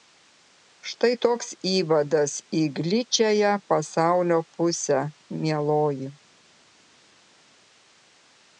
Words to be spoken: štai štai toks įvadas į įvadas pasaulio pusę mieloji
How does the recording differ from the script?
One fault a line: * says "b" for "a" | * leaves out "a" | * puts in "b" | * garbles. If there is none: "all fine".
* leaves out "štai"
* says "gličiąją" for "įvadas"